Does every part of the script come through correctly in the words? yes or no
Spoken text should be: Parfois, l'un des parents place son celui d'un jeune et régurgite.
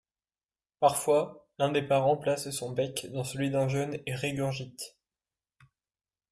no